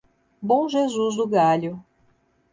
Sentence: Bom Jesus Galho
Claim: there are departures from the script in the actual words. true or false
true